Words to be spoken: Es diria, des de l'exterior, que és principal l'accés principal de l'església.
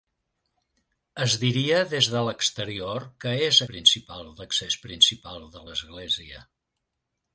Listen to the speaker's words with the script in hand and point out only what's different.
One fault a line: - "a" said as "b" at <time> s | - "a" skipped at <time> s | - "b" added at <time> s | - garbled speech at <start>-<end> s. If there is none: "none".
none